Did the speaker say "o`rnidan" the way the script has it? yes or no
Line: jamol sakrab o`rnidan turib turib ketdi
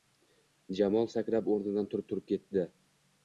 yes